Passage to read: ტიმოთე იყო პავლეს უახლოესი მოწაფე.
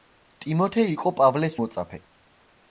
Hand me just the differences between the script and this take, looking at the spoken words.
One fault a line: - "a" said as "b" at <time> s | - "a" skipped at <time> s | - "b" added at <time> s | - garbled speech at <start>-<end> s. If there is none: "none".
- "უახლოესი" skipped at 1.6 s